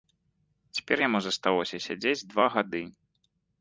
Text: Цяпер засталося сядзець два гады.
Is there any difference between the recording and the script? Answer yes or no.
yes